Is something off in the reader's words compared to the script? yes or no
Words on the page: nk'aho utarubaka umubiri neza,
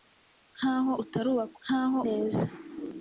yes